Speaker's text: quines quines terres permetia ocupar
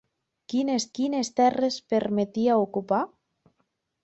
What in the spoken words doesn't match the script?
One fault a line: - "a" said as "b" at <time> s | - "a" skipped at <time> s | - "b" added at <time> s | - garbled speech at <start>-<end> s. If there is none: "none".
none